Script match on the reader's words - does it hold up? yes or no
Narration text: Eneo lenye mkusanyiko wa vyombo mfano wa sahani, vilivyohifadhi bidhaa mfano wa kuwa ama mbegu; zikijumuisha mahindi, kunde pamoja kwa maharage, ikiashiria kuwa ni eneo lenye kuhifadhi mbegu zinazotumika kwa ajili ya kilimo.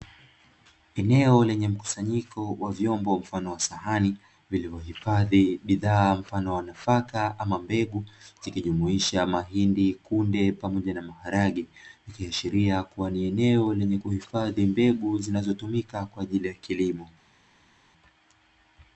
no